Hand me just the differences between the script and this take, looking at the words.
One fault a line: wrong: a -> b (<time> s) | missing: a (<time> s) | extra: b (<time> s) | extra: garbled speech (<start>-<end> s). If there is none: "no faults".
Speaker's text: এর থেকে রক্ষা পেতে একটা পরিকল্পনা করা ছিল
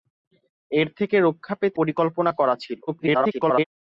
missing: একটা (1.8 s)
extra: garbled speech (2.9-3.6 s)